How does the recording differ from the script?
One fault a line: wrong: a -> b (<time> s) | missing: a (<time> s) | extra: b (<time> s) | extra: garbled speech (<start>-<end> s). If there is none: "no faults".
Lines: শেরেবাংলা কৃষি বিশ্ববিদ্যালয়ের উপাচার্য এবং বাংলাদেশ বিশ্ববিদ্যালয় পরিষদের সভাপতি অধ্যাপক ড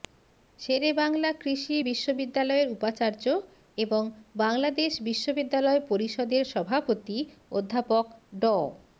no faults